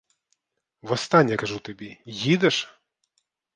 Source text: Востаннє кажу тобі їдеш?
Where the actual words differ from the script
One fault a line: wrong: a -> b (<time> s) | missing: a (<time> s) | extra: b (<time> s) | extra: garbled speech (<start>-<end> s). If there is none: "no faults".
no faults